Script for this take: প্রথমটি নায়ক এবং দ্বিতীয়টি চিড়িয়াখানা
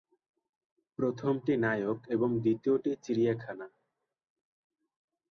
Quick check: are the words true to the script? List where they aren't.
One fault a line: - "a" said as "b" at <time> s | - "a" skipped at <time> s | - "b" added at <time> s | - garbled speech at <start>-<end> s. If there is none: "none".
none